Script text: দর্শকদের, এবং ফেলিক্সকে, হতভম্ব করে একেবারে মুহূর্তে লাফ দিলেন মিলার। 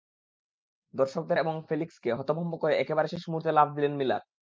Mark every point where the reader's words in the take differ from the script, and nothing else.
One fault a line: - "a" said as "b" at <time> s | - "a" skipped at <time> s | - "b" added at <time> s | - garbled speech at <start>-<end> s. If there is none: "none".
- "শেষ" added at 3.1 s